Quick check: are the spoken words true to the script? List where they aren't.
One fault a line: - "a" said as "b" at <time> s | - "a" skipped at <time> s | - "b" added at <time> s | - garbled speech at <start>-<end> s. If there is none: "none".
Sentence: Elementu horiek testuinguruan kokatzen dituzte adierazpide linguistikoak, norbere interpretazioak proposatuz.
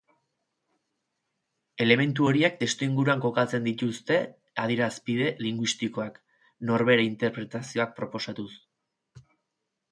none